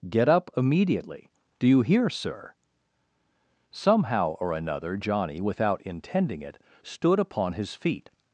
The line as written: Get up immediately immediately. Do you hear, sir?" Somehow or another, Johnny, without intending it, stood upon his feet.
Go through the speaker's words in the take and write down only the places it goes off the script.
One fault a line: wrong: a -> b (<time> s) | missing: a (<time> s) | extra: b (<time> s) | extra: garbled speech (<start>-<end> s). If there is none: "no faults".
missing: immediately (1.3 s)